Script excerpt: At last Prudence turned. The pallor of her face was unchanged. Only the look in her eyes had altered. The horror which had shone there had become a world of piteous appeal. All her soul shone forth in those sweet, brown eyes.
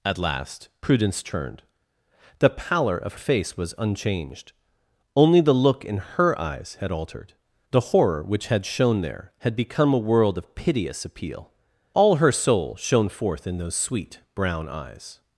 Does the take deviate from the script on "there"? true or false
false